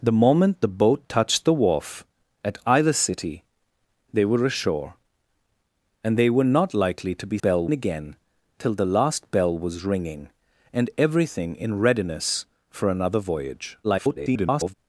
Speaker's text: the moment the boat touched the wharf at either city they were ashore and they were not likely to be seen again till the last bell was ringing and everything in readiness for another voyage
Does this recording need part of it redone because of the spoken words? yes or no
yes